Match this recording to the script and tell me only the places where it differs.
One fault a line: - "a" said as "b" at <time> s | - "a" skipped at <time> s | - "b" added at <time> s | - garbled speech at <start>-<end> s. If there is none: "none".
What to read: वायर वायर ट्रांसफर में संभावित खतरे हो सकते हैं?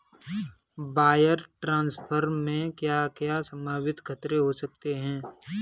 - "वायर" skipped at 1.4 s
- "क्या क्या" added at 2.7 s